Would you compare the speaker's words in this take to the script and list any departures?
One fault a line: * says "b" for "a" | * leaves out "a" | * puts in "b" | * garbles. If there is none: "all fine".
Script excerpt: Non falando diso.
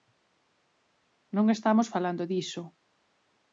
* puts in "estamos"